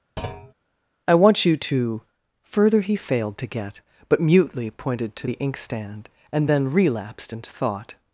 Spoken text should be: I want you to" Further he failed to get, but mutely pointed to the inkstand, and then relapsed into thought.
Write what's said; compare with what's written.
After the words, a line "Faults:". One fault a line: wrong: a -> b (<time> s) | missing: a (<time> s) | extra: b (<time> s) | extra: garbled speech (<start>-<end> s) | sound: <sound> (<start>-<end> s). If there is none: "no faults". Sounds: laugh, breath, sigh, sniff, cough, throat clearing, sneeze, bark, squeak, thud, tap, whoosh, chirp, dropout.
I want you to" Further he failed to get, but mutely pointed to the inkstand, and then relapsed into thought.
Faults:
sound: thud (0.2-0.5 s)